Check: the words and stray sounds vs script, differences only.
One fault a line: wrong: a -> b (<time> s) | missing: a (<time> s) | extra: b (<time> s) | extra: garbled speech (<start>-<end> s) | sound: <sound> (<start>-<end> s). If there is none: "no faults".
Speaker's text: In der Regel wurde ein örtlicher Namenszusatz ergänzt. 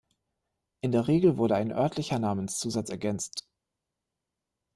no faults